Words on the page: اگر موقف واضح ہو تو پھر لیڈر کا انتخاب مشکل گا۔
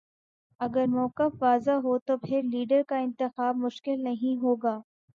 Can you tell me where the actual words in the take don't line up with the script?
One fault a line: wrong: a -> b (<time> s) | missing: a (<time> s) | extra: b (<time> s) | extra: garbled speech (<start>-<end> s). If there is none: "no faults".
extra: نہیں ہو (4.0 s)